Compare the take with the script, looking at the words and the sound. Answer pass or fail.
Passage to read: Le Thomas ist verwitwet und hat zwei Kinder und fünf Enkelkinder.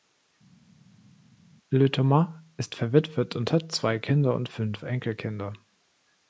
pass